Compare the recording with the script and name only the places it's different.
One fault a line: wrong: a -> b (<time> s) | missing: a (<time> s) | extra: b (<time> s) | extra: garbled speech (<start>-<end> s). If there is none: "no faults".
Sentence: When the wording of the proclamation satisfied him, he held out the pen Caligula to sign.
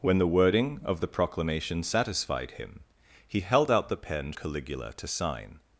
no faults